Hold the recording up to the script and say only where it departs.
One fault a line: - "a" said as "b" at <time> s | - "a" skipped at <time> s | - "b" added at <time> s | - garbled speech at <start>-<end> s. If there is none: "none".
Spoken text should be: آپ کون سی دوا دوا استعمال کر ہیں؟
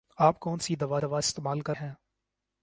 none